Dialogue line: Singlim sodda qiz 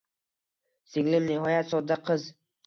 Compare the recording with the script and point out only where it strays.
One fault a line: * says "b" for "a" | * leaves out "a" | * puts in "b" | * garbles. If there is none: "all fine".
* puts in "nihoyat"